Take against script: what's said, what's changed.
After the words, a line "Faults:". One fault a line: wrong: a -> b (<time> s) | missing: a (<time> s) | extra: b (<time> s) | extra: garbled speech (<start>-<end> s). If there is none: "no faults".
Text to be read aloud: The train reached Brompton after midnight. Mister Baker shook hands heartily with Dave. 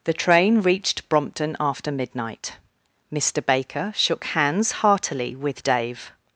The train reached Brompton after midnight. Mister Baker shook hands heartily with Dave.
Faults:
no faults